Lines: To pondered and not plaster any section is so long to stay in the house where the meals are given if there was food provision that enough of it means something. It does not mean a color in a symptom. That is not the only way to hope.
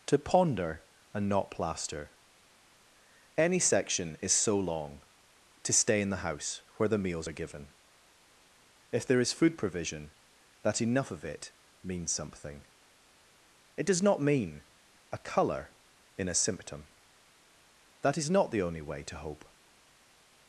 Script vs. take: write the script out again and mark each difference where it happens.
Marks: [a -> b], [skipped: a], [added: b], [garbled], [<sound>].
To [pondered -> ponder] and not plaster any section is so long to stay in the house where the meals are given if there [was -> is] food provision that enough of it means something. It does not mean a color in a symptom. That is not the only way to hope.